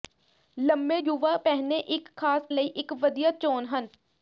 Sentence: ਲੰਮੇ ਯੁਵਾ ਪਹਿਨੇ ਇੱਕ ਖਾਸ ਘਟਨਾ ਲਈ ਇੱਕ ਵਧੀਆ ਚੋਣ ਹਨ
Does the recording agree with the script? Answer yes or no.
no